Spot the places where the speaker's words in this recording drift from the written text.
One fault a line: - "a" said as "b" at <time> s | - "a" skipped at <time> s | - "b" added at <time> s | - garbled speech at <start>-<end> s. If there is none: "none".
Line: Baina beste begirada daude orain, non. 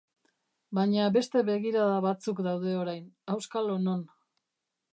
- "batzuk" added at 2.1 s
- "auskalo" added at 3.4 s